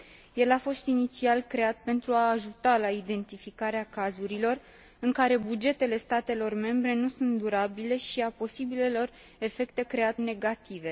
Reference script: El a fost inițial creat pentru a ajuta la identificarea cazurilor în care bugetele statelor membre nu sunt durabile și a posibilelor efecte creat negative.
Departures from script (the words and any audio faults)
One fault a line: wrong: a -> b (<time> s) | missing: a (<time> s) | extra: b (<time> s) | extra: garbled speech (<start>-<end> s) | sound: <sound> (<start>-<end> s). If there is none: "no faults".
no faults